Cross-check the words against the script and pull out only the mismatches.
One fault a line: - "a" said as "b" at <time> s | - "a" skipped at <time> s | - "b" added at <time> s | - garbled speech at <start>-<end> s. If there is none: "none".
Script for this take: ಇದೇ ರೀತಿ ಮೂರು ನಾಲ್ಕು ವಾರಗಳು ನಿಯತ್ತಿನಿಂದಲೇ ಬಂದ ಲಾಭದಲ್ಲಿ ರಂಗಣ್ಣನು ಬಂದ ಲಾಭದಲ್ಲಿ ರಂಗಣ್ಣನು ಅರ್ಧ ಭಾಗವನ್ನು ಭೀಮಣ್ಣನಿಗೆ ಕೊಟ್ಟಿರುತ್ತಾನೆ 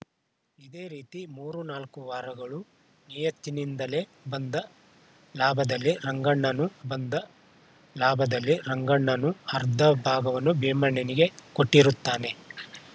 none